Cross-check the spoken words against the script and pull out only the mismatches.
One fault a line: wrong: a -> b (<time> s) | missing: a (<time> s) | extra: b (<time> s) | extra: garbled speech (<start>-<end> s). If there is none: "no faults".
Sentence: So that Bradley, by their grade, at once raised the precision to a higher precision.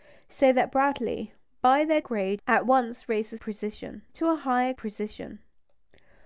no faults